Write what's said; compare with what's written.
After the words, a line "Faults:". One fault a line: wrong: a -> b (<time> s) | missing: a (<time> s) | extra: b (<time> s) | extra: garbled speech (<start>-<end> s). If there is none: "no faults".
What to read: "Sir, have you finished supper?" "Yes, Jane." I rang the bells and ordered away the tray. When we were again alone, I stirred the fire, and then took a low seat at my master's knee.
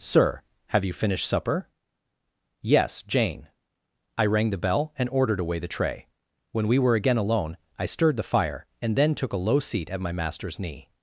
"Sir, have you finished supper?" "Yes, Jane." I rang the bell and ordered away the tray. When we were again alone, I stirred the fire, and then took a low seat at my master's knee.
Faults:
wrong: bells -> bell (4.6 s)